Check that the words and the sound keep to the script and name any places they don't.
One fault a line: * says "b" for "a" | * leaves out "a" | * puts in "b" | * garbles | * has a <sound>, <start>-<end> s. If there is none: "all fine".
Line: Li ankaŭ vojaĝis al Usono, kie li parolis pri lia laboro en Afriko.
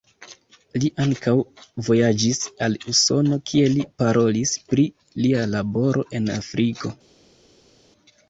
all fine